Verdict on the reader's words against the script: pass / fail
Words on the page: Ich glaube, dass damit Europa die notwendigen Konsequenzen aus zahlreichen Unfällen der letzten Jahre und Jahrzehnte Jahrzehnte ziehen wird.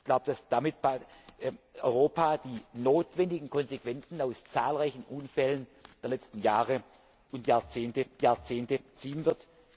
pass